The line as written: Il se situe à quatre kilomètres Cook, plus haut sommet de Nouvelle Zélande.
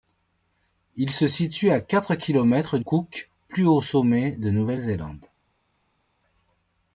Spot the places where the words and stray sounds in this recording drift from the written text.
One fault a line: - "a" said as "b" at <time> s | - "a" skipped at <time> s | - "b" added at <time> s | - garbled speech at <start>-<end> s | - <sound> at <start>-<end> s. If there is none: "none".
none